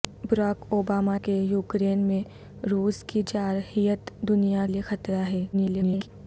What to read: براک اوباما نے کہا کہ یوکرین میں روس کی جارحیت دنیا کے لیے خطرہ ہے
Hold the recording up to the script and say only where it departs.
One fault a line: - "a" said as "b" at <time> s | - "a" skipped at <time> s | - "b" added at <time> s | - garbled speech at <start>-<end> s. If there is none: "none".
- "نے کہا" skipped at 1.2 s
- "کے" skipped at 4.7 s
- garbled speech at 5.5-6.1 s